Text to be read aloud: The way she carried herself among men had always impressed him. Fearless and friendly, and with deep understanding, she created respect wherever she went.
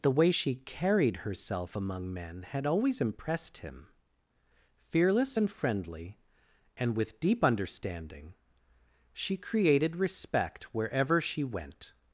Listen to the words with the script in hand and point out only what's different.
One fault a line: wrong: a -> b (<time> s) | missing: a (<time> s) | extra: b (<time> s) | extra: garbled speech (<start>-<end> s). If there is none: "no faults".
no faults